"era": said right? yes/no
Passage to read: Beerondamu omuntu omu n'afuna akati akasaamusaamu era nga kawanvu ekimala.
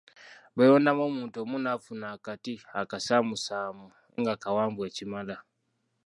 no